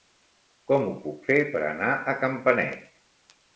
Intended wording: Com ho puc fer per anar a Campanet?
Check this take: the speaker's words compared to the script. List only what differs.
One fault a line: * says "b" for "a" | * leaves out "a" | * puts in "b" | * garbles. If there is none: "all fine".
all fine